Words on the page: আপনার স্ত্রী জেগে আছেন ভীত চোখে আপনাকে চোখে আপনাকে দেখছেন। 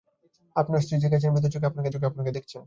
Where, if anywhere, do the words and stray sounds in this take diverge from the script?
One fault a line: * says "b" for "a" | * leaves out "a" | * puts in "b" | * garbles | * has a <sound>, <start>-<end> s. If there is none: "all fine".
all fine